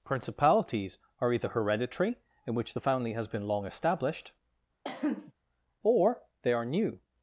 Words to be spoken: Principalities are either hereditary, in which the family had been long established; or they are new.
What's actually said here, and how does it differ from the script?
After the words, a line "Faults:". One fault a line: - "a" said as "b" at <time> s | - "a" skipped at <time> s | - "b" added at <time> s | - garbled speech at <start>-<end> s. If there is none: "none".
Principalities are either hereditary, in which the family has been long established; or they are new.
Faults:
- "had" said as "has" at 3.1 s